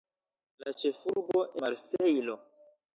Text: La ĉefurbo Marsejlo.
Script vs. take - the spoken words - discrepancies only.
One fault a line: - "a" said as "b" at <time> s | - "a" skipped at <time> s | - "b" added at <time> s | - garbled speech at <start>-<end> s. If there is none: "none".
none